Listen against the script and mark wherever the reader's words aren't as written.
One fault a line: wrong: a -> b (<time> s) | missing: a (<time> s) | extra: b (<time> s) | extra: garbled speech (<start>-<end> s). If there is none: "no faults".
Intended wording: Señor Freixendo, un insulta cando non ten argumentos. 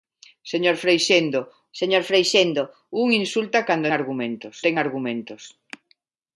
extra: señor Freixendo (1.8 s)
wrong: non -> argumentos (4.0 s)